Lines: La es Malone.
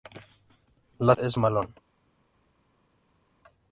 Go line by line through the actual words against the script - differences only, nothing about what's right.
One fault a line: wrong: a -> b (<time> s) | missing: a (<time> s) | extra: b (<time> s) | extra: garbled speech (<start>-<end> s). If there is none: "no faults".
no faults